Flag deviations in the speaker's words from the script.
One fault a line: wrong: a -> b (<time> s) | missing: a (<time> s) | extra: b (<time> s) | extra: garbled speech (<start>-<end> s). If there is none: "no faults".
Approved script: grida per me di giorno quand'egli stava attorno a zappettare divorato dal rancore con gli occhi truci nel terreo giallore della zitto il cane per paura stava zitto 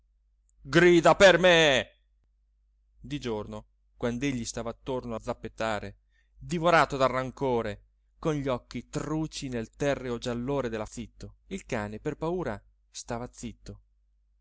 no faults